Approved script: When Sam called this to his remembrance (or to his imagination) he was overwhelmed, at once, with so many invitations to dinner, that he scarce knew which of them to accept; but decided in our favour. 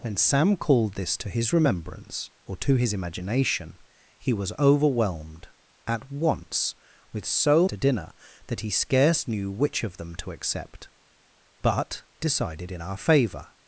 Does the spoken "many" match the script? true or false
false